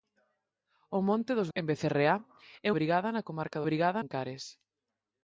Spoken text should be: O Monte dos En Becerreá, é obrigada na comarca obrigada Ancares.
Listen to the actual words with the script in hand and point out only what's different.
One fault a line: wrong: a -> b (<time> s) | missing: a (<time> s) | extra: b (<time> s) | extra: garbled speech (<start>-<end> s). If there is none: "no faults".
no faults